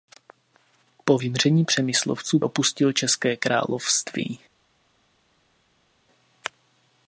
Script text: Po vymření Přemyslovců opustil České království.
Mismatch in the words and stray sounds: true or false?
false